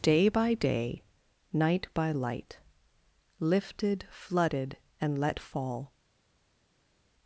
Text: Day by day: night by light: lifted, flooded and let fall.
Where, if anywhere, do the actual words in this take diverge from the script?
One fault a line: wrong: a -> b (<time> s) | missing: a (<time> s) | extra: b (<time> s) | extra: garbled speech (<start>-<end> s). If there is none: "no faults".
no faults